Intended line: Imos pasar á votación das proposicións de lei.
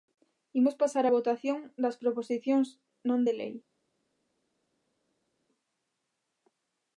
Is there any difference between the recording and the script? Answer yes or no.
yes